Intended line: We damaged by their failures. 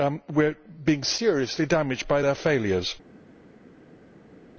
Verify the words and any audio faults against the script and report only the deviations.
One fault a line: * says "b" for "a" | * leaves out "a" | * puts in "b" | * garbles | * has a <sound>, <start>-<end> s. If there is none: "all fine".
* puts in "are being seriously"